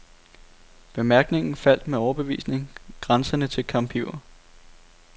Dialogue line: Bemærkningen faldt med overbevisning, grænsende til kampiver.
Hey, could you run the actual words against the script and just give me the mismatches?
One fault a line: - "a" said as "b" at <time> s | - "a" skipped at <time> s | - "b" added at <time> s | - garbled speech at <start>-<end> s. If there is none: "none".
none